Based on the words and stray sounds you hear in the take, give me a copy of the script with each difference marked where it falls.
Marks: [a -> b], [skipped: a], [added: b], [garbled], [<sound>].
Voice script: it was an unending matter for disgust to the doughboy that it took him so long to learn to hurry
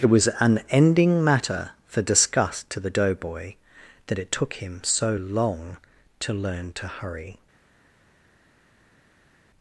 it was an [unending -> ending] matter for disgust to the doughboy that it took him so long to learn to hurry